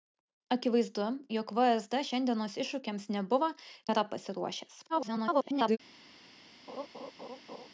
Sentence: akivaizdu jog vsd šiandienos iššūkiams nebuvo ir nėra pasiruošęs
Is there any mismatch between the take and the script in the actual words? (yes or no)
yes